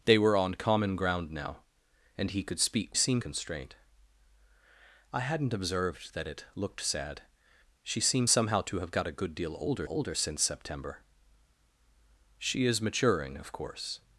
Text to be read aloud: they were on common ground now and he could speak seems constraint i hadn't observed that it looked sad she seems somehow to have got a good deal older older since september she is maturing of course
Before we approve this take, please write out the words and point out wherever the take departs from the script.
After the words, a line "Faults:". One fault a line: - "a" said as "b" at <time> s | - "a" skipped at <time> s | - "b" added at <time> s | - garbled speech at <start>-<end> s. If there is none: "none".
they were on common ground now and he could speak seems constraint i hadn't observed that it looked sad she seems somehow to have got a good deal older older since september she is maturing of course
Faults:
none